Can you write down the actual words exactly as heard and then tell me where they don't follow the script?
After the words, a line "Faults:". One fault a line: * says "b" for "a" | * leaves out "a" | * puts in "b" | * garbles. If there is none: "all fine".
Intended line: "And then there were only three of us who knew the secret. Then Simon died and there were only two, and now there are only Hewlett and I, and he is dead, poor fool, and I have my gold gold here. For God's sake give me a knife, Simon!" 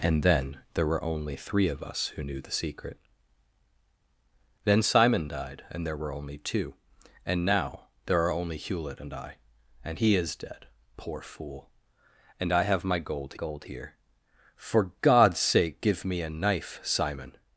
"And then there were only three of us who knew the secret. Then Simon died and there were only two, and now there are only Hewlett and I, and he is dead, poor fool, and I have my gold gold here. For God's sake give me a knife, Simon!"
Faults:
all fine